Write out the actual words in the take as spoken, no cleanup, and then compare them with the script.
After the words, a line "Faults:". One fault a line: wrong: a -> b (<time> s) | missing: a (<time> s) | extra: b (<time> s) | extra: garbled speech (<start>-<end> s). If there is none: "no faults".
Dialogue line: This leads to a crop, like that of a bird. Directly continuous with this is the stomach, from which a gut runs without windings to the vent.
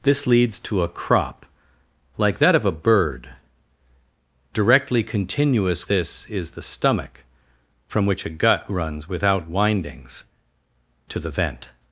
This leads to a crop, like that of a bird. Directly continuous this is the stomach, from which a gut runs without windings to the vent.
Faults:
missing: with (5.9 s)